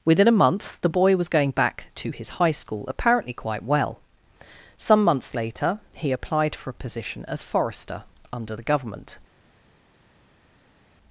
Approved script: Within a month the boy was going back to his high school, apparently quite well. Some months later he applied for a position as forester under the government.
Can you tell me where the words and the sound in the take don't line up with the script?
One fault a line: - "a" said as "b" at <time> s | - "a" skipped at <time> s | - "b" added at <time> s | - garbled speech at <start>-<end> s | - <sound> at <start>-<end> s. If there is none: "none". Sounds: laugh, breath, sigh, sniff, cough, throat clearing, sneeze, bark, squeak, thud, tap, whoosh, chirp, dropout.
none